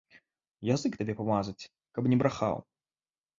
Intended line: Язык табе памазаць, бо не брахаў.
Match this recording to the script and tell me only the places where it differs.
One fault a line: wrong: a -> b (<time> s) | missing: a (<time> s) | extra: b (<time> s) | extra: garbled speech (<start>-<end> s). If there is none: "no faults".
wrong: бо -> каб (2.0 s)